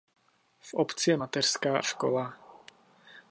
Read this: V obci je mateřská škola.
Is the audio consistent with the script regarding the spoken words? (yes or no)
yes